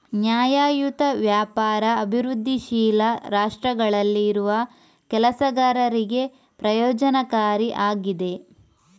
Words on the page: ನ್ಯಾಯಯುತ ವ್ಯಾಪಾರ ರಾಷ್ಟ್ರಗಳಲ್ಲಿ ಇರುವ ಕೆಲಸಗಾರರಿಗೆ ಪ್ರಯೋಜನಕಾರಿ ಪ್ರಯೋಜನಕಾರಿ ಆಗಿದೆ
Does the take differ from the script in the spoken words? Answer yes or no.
yes